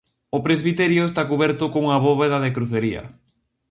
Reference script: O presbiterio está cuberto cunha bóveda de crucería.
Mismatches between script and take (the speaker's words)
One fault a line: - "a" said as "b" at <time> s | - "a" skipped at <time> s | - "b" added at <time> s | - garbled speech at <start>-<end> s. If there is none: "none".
none